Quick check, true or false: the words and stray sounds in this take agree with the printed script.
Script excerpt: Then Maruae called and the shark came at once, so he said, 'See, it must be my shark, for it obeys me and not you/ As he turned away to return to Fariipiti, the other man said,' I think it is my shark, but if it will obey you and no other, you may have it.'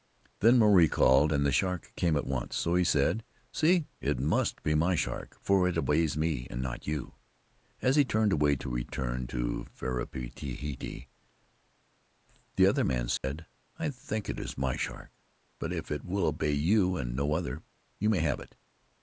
false